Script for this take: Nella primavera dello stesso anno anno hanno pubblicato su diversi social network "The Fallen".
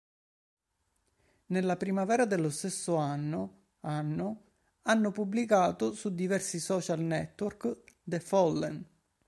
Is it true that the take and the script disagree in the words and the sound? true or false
false